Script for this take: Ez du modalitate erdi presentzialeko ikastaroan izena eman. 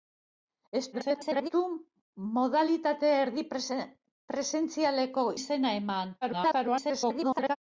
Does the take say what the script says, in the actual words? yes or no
no